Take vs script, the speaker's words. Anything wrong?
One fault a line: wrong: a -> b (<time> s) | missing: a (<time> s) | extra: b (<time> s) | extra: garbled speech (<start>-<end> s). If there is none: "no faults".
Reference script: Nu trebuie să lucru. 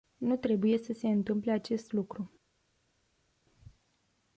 extra: se întâmple acest (0.9 s)